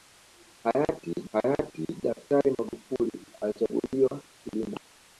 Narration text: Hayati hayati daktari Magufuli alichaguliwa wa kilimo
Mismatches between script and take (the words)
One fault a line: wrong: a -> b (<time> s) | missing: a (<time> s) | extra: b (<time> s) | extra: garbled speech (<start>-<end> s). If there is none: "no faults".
no faults